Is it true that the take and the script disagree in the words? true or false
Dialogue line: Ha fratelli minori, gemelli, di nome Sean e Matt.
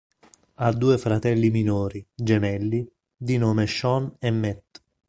true